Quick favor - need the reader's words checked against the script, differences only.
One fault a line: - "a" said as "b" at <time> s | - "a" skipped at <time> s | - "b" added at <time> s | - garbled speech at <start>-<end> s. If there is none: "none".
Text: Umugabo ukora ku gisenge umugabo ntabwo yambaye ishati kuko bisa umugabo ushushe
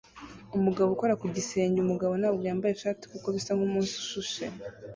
- "umugabo" said as "nkumunsi" at 3.6 s